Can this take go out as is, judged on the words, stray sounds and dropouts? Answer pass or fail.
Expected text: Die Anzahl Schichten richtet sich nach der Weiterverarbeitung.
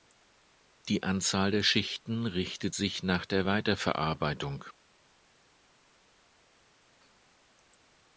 fail